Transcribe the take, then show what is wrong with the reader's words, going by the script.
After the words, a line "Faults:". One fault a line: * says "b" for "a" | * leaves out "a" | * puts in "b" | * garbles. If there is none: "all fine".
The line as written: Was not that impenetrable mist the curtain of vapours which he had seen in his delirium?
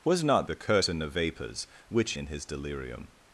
Was not the curtain of vapours which in his delirium?
Faults:
* leaves out "that impenetrable mist"
* leaves out "he had seen"